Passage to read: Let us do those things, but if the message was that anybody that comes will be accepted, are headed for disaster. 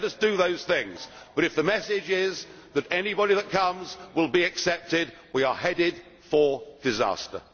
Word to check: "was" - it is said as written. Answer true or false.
false